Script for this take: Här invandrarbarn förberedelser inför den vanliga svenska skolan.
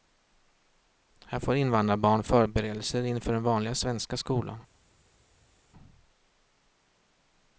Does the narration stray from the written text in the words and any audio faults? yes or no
yes